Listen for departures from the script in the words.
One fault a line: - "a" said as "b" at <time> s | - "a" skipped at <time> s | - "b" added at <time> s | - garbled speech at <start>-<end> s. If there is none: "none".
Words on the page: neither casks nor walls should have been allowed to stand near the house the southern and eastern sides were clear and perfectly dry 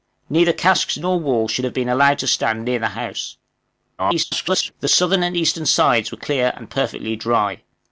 - garbled speech at 4.0-4.7 s